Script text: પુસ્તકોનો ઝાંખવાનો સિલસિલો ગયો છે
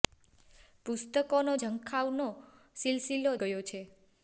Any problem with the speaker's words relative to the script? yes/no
no